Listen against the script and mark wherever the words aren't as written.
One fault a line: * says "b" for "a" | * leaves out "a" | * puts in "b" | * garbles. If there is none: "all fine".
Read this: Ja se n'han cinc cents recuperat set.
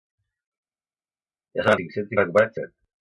all fine